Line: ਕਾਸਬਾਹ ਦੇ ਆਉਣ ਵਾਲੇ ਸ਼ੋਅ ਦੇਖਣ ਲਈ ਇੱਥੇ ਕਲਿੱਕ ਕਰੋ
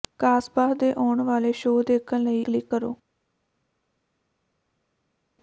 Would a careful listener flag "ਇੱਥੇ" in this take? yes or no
yes